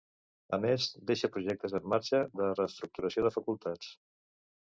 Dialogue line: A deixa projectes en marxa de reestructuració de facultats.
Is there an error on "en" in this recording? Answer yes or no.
no